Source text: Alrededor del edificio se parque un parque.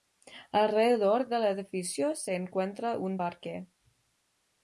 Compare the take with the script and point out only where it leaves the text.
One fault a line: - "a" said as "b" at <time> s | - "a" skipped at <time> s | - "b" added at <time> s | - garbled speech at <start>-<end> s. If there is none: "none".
- "parque" said as "encuentra" at 2.3 s